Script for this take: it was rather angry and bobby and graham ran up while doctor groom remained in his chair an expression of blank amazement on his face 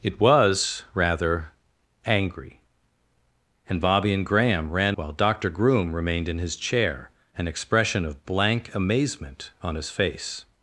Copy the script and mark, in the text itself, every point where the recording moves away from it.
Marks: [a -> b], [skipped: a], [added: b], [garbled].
it was rather angry and bobby and graham ran [skipped: up] while doctor groom remained in his chair an expression of blank amazement on his face